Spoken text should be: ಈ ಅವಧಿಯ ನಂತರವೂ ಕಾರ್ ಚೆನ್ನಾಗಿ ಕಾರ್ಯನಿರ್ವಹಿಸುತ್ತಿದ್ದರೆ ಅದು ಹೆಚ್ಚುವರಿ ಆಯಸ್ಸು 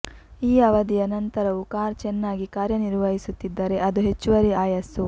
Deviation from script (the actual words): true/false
false